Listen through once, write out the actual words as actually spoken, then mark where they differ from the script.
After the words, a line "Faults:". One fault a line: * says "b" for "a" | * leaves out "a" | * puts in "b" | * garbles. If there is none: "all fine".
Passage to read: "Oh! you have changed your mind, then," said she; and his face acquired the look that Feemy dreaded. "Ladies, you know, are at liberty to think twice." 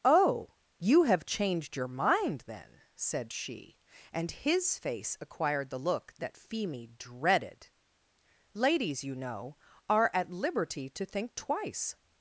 "Oh! you have changed your mind, then," said she; and his face acquired the look that Feemy dreaded. "Ladies, you know, are at liberty to think twice."
Faults:
all fine